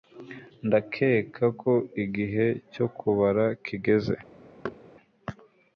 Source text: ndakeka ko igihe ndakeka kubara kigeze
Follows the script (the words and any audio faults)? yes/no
no